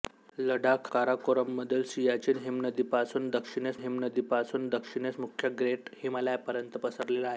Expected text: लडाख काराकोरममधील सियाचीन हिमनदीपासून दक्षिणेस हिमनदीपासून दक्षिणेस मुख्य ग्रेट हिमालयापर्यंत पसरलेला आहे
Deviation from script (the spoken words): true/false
false